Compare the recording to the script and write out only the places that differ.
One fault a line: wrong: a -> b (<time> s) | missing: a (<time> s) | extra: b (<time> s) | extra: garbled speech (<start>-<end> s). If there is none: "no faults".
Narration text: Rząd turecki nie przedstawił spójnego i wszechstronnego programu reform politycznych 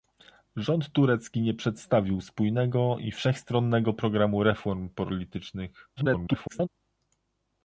extra: garbled speech (6.0-6.7 s)